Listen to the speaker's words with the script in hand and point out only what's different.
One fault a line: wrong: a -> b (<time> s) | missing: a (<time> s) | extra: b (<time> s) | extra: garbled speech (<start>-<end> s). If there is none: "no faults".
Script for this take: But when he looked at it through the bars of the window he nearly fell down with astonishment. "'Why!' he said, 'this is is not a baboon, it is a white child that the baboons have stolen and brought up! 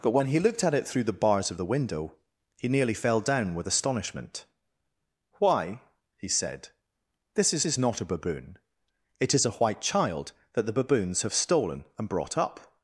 no faults